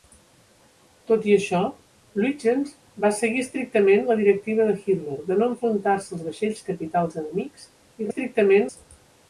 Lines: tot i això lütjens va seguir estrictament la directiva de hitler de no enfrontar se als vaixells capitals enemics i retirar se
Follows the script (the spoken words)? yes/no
no